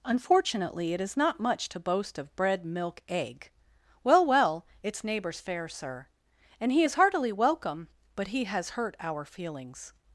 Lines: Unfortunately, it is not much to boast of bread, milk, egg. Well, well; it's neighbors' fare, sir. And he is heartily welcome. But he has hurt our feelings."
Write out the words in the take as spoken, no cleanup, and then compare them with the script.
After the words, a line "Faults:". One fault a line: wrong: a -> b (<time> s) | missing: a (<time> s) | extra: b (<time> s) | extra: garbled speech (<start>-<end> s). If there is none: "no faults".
Unfortunately, it is not much to boast of bread, milk, egg. Well, well; it's neighbors' fare, sir. And he is heartily welcome. But he has hurt our feelings."
Faults:
no faults